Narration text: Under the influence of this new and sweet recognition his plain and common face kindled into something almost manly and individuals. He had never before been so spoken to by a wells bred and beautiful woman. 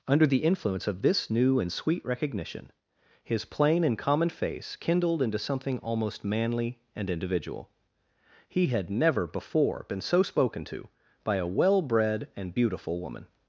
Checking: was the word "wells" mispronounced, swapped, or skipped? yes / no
yes